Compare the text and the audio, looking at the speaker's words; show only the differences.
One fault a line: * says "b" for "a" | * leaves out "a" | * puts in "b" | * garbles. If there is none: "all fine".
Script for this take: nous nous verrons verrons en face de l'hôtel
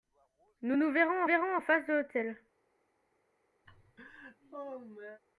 all fine